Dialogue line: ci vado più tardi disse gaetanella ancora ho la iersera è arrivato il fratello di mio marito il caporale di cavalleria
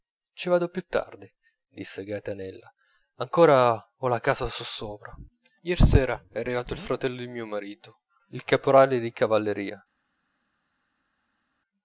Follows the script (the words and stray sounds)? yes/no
no